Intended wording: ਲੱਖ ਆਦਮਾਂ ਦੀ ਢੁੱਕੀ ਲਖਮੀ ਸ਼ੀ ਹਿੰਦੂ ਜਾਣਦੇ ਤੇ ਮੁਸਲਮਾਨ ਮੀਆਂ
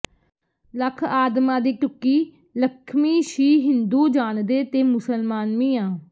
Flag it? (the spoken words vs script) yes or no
no